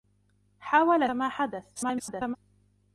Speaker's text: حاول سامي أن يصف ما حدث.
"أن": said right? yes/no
no